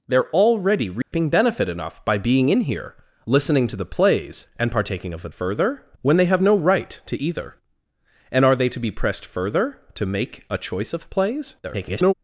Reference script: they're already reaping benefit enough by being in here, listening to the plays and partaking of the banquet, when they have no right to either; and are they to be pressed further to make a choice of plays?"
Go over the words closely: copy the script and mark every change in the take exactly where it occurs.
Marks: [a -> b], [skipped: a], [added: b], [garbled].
they're already reaping benefit enough by being in here, listening to the plays and partaking of the [banquet, -> further] when they have no right to either; and are they to be pressed further to make a choice of plays?" [garbled]